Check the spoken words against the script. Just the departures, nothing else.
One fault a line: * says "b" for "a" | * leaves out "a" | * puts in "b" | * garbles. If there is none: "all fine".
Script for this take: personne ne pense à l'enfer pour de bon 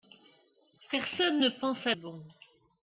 * leaves out "l'enfer pour de"